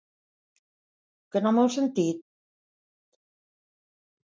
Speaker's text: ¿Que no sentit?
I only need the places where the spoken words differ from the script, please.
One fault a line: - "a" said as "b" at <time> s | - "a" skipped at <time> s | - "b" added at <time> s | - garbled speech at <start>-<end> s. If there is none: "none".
- "m'heu" added at 1.6 s